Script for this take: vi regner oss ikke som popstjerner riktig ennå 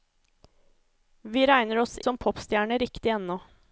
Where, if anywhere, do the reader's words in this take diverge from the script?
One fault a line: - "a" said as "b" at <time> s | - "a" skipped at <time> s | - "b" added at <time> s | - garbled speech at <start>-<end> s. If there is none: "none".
- "ikke" skipped at 2.0 s